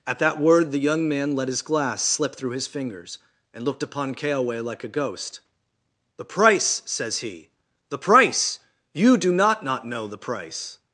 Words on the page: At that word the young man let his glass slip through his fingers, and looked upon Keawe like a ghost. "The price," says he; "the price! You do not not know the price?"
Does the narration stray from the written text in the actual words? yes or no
no